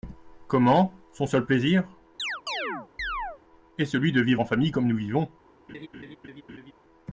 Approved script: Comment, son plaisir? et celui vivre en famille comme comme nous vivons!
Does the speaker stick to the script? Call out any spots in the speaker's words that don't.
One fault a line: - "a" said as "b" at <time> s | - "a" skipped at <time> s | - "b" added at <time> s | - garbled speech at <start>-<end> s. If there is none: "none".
- "seul" added at 1.3 s
- "de" added at 4.1 s
- "comme" skipped at 4.9 s